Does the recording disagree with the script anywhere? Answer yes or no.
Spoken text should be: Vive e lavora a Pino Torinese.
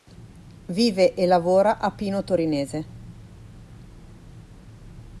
no